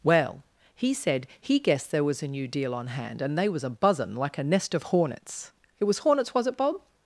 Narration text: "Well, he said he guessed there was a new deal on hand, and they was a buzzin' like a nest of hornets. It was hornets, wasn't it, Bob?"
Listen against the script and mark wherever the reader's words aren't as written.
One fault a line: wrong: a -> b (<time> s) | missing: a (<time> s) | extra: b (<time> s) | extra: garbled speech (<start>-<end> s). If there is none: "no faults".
wrong: wasn't -> was (6.3 s)